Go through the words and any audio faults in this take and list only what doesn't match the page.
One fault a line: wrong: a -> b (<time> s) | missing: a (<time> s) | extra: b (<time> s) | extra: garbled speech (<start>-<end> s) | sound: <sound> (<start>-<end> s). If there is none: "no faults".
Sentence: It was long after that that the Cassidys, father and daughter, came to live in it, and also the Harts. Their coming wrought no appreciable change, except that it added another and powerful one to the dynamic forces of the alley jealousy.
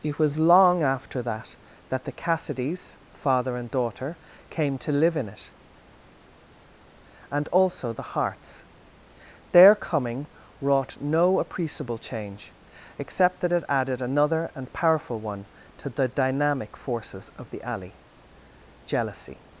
no faults